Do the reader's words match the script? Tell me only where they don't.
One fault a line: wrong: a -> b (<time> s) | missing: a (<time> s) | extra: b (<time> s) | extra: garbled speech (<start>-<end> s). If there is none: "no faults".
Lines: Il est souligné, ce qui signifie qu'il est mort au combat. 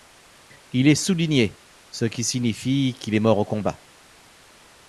no faults